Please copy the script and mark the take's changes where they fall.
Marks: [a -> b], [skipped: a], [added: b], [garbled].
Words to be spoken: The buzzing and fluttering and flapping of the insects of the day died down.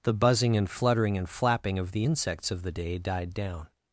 The buzzing and fluttering and flapping of the insects of the day died down.